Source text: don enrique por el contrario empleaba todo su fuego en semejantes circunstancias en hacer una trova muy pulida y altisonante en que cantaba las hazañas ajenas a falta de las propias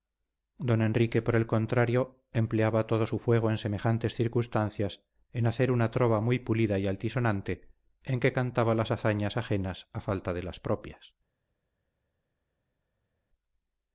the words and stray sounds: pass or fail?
pass